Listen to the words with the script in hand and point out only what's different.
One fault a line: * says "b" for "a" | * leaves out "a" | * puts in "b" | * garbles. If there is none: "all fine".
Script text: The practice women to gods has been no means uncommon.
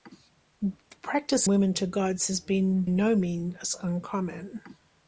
all fine